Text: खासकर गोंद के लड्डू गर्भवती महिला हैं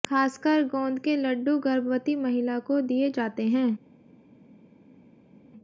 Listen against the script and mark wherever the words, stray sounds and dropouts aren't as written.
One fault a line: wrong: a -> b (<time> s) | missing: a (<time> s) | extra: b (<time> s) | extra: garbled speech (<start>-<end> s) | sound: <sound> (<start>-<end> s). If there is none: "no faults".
extra: को दिए जाते (2.6 s)